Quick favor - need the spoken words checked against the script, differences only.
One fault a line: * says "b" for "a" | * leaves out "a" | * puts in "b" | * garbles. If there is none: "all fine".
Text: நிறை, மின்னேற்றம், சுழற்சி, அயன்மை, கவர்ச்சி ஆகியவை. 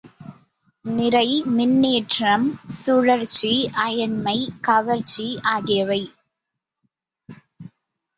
all fine